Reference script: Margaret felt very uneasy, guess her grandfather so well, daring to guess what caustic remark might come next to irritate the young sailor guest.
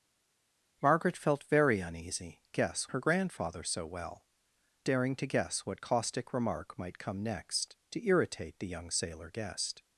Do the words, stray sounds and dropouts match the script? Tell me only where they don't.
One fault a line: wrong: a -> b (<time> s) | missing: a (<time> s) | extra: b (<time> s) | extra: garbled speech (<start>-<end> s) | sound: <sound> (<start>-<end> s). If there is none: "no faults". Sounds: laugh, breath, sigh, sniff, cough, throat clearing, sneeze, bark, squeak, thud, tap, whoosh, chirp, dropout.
no faults